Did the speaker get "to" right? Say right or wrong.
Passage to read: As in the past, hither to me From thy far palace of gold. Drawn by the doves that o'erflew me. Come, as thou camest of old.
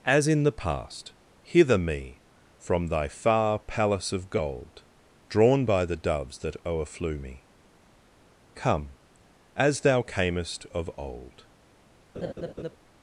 wrong